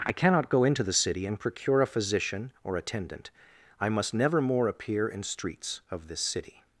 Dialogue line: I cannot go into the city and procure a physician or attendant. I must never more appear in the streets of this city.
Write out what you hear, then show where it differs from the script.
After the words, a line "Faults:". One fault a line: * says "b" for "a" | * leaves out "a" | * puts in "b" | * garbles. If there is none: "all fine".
I cannot go into the city and procure a physician or attendant. I must never more appear in streets of this city.
Faults:
* leaves out "the"